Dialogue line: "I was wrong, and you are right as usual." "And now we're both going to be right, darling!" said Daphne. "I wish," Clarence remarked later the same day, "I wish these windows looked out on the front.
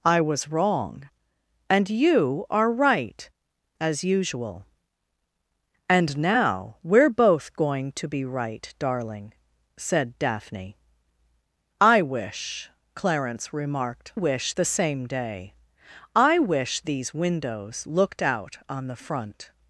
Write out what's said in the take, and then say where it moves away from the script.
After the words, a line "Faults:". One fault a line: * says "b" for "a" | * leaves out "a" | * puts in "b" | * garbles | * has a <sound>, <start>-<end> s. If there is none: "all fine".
"I was wrong, and you are right as usual." "And now we're both going to be right, darling!" said Daphne. "I wish," Clarence remarked wish the same day, "I wish these windows looked out on the front.
Faults:
* says "wish" for "later"